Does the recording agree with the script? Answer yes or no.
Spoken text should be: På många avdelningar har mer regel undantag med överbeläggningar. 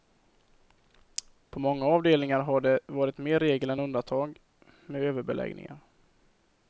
no